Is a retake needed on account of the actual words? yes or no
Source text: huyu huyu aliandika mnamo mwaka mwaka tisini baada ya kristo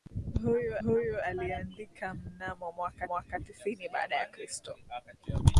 no